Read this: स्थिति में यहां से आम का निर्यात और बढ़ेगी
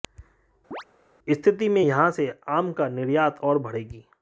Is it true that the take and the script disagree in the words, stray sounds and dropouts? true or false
true